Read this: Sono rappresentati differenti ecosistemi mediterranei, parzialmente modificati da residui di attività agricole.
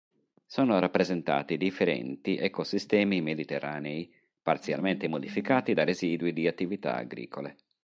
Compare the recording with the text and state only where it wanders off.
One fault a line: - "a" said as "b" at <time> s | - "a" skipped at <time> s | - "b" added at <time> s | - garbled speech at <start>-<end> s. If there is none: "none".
none